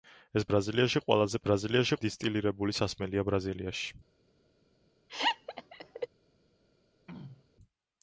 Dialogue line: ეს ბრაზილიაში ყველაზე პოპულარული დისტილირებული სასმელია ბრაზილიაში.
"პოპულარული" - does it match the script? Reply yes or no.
no